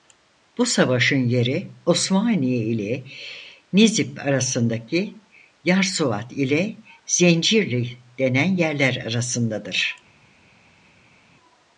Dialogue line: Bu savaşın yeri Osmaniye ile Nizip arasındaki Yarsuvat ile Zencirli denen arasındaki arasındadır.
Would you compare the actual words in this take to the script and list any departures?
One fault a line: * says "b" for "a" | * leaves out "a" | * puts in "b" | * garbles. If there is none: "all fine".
* says "yerler" for "arasındaki"